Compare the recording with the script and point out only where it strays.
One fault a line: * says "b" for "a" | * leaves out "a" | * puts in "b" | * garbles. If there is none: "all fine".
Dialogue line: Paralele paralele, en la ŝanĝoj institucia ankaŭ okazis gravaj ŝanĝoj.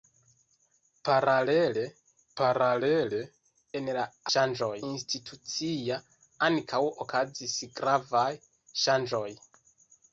all fine